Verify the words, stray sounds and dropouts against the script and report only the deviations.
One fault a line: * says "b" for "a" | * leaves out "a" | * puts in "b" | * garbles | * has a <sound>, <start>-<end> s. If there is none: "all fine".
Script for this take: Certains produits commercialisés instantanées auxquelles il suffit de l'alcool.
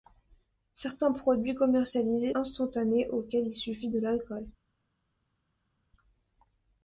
all fine